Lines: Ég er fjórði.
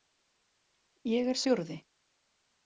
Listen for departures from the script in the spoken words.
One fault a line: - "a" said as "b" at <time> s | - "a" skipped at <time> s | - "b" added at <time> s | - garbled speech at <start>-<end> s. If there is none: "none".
none